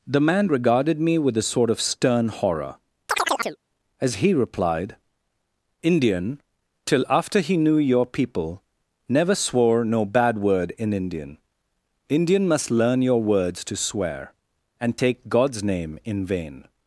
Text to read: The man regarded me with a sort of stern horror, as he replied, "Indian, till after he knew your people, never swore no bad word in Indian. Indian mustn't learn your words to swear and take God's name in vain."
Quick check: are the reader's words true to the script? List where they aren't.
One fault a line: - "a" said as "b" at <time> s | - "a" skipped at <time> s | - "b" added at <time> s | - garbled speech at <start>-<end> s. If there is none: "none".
- "mustn't" said as "must" at 12.5 s